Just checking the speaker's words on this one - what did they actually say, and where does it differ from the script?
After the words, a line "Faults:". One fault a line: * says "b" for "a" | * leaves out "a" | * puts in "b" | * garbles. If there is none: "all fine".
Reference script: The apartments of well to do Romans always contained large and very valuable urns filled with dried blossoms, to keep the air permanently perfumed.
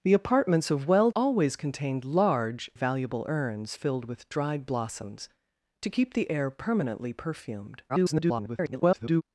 The apartments of well always contained large valuable urns filled with dried blossoms, to keep the air permanently perfumed. [garbled]
Faults:
* leaves out "to do Romans"
* leaves out "and very"
* garbles